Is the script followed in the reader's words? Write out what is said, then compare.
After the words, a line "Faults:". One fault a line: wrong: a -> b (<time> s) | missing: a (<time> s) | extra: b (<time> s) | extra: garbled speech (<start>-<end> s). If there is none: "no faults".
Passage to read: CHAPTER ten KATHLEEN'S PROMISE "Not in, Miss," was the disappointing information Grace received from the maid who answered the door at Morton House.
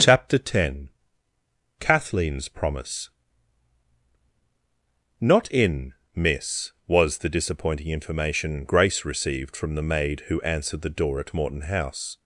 CHAPTER ten KATHLEEN'S PROMISE "Not in, Miss," was the disappointing information Grace received from the maid who answered the door at Morton House.
Faults:
no faults